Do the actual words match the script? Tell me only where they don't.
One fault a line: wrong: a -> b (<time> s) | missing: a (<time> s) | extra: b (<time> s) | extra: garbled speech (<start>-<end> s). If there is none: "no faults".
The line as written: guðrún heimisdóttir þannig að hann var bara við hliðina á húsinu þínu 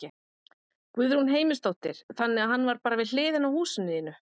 no faults